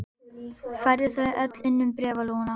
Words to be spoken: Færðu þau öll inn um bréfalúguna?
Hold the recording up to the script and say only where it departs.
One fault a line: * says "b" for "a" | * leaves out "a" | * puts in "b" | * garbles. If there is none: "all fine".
all fine